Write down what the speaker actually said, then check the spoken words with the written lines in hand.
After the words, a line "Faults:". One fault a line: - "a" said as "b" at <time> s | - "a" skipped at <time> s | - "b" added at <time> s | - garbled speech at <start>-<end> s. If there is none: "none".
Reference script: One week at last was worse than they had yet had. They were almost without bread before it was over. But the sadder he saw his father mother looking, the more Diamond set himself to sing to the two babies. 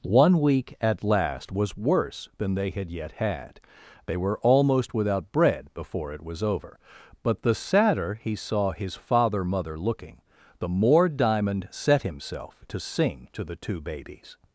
One week at last was worse than they had yet had. They were almost without bread before it was over. But the sadder he saw his father mother looking, the more Diamond set himself to sing to the two babies.
Faults:
none